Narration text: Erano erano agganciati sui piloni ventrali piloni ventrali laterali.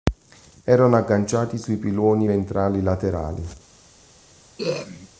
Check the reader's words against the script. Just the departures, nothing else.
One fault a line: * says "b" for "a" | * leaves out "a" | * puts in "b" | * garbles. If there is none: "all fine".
* leaves out "erano"
* leaves out "piloni ventrali"